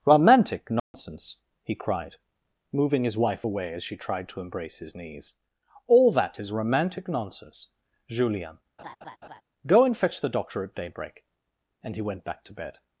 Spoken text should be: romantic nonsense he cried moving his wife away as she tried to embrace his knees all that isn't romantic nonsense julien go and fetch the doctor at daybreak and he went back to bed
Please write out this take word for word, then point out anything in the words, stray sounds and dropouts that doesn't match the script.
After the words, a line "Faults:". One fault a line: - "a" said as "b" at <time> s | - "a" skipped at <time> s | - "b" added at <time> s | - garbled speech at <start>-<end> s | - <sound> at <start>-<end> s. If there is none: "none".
romantic nonsense he cried moving his wife away as she tried to embrace his knees all that is romantic nonsense julien go and fetch the doctor at daybreak and he went back to bed
Faults:
- dropout at 0.8-0.9 s
- "isn't" said as "is" at 6.4 s
- laugh at 8.8-9.4 s